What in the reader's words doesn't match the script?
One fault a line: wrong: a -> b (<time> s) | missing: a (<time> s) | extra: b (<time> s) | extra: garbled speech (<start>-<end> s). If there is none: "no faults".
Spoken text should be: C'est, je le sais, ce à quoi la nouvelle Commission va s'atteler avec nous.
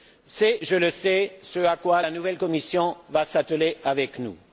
no faults